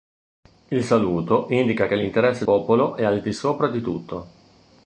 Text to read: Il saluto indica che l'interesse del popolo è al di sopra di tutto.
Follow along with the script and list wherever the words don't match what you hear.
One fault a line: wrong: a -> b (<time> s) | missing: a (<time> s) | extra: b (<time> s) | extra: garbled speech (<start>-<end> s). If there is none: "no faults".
missing: del (2.4 s)